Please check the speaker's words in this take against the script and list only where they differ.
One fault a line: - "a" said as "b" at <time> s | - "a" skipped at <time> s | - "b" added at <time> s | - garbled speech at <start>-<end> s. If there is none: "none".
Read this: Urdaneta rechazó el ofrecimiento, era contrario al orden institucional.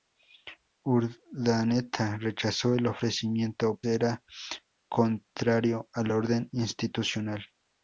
none